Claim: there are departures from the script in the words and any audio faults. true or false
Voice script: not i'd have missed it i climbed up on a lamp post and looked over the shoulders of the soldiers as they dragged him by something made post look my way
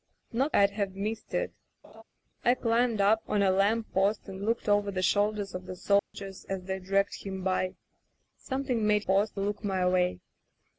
true